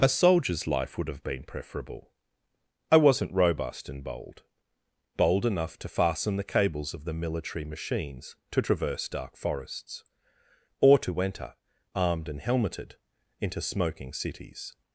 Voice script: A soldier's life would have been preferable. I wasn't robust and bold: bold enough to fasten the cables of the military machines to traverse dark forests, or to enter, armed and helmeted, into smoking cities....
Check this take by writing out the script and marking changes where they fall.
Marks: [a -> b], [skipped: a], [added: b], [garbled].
A soldier's life would have been preferable. I wasn't robust and bold: bold enough to fasten the cables of the military machines to traverse dark forests, or to enter, armed and helmeted, into smoking cities....